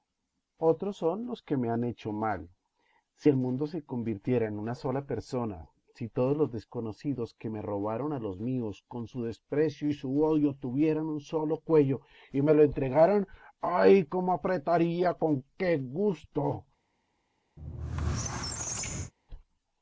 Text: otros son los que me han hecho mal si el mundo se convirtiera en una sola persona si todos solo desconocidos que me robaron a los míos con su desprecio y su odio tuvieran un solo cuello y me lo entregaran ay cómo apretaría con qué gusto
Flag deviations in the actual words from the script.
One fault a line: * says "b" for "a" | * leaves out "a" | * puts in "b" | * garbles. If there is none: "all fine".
* says "los" for "solo"